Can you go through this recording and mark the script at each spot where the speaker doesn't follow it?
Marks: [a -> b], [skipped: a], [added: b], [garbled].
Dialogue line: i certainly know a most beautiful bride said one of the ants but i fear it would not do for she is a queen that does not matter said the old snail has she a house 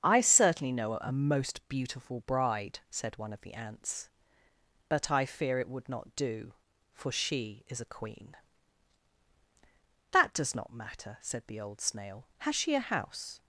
i certainly know a most beautiful bride said one of the ants but i fear it would not do for she is a queen that does not matter said the old snail has she a house